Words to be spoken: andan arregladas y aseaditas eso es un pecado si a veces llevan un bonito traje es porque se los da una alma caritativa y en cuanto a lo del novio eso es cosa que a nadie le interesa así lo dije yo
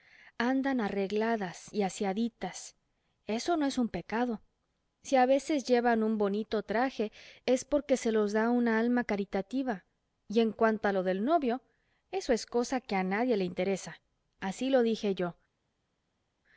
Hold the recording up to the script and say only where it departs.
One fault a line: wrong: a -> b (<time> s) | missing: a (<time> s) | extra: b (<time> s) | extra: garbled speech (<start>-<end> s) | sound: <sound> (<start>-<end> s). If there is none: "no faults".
extra: no (3.6 s)